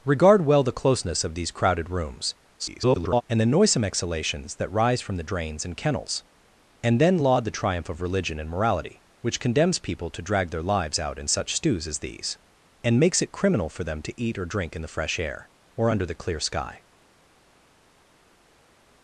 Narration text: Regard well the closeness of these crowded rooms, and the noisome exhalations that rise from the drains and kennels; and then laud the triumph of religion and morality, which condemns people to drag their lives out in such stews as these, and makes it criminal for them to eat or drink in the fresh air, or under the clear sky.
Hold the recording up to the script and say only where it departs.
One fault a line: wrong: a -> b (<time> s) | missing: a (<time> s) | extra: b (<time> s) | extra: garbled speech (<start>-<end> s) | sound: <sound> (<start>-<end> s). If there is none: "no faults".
extra: garbled speech (2.6-3.2 s)